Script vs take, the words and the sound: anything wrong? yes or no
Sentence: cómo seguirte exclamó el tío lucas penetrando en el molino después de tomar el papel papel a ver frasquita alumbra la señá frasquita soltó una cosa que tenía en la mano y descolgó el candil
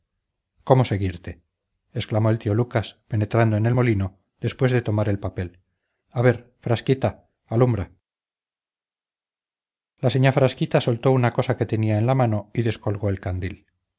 yes